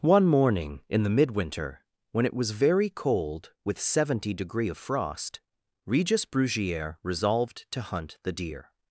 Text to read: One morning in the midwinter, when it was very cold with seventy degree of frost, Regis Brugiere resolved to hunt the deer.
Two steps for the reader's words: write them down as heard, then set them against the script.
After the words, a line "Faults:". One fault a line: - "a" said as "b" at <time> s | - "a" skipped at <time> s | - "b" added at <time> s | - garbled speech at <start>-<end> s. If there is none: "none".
One morning in the midwinter, when it was very cold with seventy degree of frost, Regis Brugiere resolved to hunt the deer.
Faults:
none